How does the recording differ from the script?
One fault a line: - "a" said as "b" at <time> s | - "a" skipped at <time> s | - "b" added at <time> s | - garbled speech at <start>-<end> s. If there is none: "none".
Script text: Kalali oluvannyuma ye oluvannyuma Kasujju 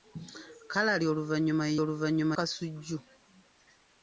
none